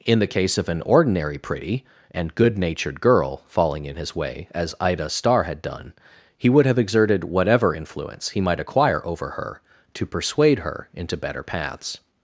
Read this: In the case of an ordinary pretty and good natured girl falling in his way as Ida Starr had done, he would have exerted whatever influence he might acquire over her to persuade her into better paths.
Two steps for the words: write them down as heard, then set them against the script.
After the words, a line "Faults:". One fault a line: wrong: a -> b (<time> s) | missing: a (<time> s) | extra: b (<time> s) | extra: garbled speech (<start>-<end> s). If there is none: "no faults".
In the case of an ordinary pretty and good natured girl falling in his way as Ida Starr had done, he would have exerted whatever influence he might acquire over her to persuade her into better paths.
Faults:
no faults